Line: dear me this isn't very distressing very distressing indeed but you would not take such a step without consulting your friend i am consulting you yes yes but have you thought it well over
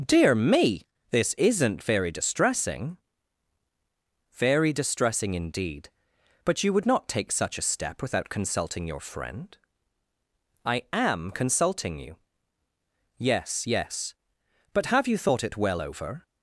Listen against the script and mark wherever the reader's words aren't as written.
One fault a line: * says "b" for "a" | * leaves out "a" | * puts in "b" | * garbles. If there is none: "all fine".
all fine